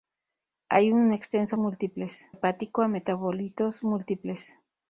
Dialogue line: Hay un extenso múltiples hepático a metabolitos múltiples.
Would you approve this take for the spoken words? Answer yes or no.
yes